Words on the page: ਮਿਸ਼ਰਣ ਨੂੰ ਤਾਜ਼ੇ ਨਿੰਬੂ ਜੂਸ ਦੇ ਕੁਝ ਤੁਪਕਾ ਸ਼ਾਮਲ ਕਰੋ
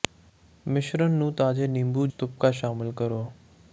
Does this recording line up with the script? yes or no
no